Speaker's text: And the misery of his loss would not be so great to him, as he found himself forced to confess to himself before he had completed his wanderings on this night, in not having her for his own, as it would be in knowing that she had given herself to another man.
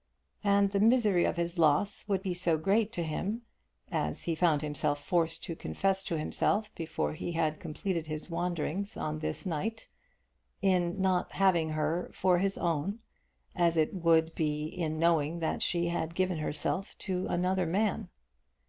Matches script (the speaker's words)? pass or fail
fail